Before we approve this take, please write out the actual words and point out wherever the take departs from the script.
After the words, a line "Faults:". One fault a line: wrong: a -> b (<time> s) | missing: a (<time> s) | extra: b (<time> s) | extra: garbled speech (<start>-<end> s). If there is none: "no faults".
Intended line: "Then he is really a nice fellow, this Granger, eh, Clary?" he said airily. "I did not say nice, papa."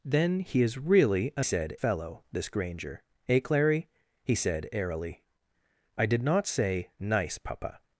"Then he is really a said fellow, this Granger, eh, Clary?" he said airily. "I did not say nice, papa."
Faults:
wrong: nice -> said (1.4 s)